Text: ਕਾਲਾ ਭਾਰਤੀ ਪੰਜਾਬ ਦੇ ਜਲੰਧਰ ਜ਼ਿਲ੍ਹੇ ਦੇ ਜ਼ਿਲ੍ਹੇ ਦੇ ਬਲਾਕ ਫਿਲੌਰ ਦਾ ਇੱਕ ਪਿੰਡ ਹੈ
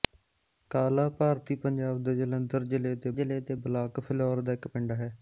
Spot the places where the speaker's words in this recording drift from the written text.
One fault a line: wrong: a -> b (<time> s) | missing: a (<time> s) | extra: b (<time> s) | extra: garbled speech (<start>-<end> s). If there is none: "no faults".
no faults